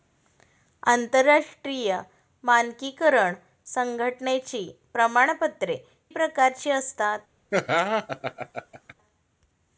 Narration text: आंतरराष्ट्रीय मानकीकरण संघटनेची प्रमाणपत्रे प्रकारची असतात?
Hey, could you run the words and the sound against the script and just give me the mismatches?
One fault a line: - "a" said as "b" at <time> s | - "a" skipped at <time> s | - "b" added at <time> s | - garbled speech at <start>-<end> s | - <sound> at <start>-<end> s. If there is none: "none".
- laugh at 7.5-8.9 s